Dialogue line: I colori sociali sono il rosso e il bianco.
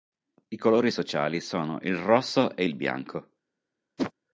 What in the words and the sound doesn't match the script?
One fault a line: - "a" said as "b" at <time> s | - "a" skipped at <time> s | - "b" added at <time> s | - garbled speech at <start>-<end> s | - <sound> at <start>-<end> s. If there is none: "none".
- whoosh at 4.0-4.1 s